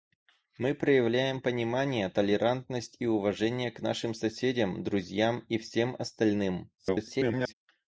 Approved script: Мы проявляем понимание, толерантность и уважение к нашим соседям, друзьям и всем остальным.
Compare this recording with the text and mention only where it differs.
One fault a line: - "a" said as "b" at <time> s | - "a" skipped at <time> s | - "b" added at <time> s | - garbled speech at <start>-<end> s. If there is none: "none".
- garbled speech at 6.8-7.5 s